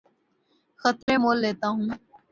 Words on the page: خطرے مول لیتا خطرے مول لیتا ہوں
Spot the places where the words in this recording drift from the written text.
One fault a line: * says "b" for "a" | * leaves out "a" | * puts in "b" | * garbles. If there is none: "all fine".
* leaves out "خطرے مول لیتا"